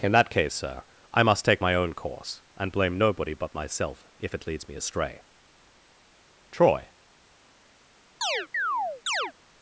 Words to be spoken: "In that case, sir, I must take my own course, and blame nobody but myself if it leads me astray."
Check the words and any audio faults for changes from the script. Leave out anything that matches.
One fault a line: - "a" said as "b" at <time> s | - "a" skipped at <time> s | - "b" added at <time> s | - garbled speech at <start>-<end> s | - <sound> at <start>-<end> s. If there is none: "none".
- "Troy" added at 6.5 s
- chirp at 8.2-9.3 s